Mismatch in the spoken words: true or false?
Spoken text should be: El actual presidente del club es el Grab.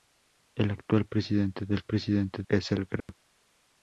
true